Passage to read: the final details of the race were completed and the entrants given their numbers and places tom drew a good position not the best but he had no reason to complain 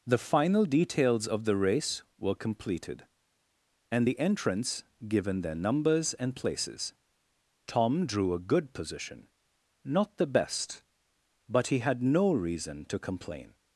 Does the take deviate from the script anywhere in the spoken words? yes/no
no